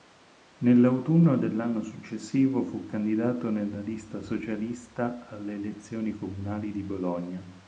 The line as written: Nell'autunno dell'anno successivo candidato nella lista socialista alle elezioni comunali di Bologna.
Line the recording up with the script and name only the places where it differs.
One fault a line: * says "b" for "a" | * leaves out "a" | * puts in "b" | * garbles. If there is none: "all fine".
* puts in "fu"